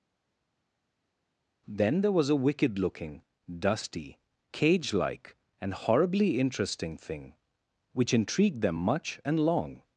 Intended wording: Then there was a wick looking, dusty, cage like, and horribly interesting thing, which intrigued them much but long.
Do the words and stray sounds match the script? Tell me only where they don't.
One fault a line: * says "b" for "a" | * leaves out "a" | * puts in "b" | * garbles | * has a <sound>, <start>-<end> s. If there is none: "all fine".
* says "wicked" for "wick"
* says "and" for "but"